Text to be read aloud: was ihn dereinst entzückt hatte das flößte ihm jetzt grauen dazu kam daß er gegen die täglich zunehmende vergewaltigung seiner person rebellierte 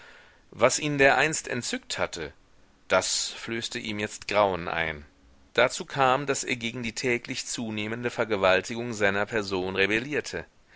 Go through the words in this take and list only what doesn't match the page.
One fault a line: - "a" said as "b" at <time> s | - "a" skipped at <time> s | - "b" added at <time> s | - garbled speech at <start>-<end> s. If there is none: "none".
- "ein" added at 4.7 s